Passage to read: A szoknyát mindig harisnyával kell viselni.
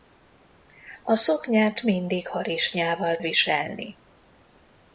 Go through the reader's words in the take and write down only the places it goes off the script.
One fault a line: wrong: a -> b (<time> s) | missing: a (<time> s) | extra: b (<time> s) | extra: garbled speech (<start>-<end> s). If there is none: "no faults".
missing: kell (3.2 s)